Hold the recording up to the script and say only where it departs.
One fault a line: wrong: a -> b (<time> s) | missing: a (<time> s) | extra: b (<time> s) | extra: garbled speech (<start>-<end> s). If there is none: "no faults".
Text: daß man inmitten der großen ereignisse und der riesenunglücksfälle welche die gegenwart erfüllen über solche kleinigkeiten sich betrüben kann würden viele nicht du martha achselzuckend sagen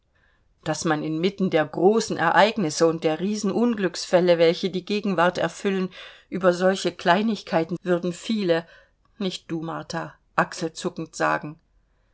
missing: sich betrüben kann (7.8 s)